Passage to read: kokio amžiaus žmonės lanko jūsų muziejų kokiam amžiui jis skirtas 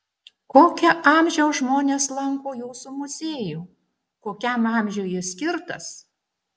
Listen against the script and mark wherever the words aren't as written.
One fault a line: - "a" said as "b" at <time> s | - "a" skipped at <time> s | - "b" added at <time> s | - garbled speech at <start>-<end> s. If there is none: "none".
none